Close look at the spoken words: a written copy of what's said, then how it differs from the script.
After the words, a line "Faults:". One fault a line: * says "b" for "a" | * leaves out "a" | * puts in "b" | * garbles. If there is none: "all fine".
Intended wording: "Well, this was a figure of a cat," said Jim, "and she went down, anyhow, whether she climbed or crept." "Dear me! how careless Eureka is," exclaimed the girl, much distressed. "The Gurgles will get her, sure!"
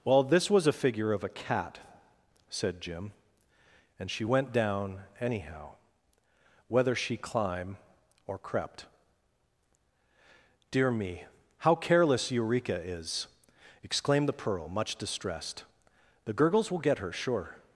"Well, this was a figure of a cat," said Jim, "and she went down, anyhow, whether she climb or crept." "Dear me! how careless Eureka is," exclaimed the pearl, much distressed. "The Gurgles will get her, sure!"
Faults:
* says "climb" for "climbed"
* says "pearl" for "girl"